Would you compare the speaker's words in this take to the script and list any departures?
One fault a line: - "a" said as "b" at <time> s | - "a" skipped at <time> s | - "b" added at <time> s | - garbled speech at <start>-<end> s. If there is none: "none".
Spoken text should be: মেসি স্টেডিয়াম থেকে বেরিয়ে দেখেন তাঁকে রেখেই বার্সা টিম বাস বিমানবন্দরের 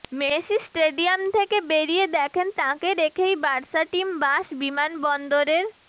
none